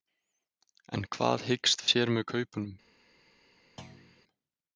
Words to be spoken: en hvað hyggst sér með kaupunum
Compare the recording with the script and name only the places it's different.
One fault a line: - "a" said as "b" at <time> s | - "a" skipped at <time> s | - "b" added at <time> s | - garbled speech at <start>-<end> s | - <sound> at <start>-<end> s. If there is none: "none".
- thud at 3.8-4.2 s